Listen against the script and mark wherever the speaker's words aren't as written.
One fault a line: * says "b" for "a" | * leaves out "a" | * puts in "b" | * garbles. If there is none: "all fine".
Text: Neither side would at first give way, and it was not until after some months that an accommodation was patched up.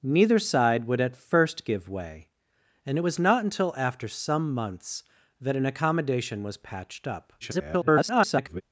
* garbles